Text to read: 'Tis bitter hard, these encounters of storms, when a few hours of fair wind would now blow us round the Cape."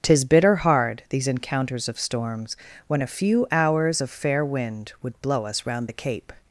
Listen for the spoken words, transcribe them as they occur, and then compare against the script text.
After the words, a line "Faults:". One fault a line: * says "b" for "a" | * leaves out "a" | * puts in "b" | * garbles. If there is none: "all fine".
'Tis bitter hard, these encounters of storms, when a few hours of fair wind would blow us round the Cape."
Faults:
* leaves out "now"